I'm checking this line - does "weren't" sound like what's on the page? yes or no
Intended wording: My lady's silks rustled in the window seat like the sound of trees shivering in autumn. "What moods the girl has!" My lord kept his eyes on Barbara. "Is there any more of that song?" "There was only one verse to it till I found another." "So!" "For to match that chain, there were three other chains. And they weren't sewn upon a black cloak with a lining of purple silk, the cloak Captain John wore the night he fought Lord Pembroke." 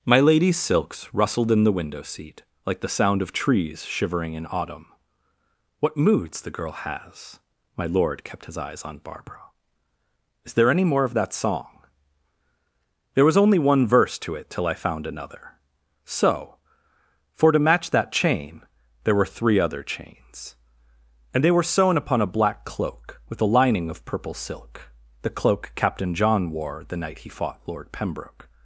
no